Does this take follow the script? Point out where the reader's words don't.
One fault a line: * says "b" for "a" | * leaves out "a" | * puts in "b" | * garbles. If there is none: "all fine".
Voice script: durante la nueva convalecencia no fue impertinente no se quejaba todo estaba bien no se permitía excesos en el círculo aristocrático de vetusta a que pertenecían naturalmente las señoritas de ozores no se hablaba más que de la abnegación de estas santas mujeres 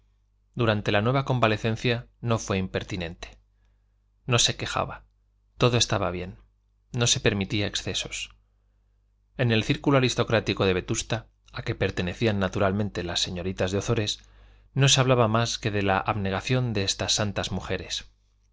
all fine